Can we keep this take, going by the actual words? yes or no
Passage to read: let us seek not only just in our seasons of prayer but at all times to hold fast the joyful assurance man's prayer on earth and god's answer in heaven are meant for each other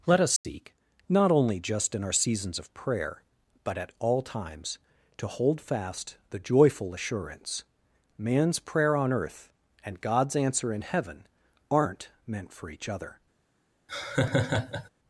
no